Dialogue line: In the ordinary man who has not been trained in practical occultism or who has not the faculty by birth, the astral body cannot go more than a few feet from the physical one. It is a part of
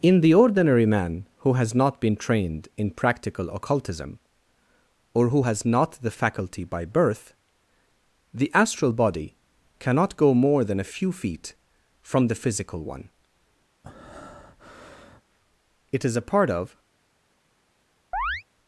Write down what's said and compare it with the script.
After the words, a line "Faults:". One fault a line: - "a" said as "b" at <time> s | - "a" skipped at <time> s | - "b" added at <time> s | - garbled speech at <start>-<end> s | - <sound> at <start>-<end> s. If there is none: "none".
In the ordinary man who has not been trained in practical occultism or who has not the faculty by birth, the astral body cannot go more than a few feet from the physical one. It is a part of
Faults:
- breath at 13.8-15.2 s
- chirp at 18.1-18.4 s